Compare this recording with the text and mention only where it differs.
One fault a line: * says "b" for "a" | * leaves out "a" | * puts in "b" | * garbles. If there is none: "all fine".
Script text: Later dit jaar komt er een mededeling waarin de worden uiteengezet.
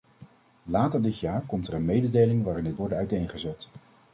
all fine